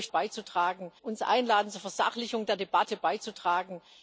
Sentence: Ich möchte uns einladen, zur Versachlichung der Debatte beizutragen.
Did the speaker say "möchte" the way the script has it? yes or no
no